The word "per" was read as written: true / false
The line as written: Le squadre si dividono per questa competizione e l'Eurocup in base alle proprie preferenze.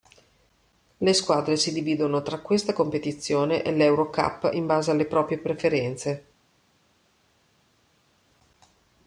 false